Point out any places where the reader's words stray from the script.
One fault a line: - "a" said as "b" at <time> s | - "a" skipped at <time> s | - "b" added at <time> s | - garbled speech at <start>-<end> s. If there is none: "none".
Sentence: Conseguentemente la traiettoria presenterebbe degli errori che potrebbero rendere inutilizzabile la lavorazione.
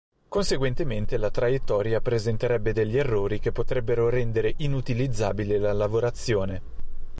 none